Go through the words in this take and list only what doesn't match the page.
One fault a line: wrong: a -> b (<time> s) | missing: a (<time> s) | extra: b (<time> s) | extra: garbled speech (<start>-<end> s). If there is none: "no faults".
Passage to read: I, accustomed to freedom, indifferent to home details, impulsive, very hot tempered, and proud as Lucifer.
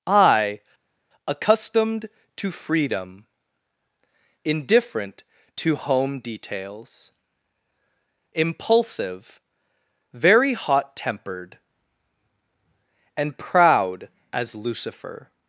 no faults